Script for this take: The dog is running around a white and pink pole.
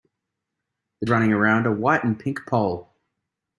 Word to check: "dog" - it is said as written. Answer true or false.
false